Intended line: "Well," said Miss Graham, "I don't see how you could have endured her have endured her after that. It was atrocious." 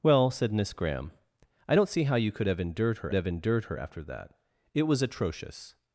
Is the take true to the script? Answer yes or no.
yes